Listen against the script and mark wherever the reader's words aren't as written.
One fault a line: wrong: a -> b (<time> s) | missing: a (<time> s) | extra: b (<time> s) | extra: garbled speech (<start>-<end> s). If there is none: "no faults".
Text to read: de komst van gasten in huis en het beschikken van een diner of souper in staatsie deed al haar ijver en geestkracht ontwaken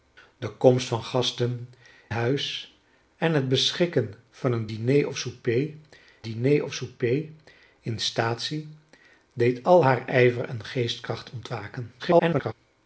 missing: in (1.7 s)
extra: diner of souper (6.2 s)
extra: garbled speech (12.0-12.5 s)